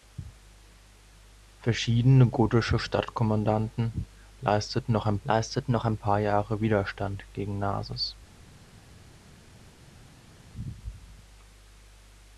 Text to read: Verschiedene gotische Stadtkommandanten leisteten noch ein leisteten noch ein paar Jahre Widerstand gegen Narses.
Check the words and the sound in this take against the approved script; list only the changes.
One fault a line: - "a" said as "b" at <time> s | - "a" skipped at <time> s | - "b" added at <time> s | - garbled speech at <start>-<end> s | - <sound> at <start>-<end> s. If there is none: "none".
none